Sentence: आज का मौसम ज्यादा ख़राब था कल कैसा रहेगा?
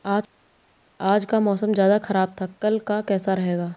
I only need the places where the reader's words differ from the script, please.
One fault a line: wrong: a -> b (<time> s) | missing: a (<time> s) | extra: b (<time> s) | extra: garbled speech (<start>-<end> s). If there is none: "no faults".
extra: का (2.9 s)